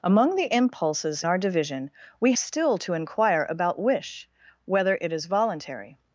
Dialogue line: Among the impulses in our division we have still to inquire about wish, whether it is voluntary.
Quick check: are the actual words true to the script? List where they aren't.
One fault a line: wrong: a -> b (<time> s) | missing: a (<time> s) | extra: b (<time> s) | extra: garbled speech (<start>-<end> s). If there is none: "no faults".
missing: in (1.2 s)
missing: have (2.3 s)